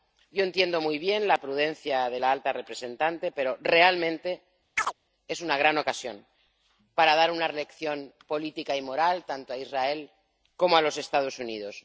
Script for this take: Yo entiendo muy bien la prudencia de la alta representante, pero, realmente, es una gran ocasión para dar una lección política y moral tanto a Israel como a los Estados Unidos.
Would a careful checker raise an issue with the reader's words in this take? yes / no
no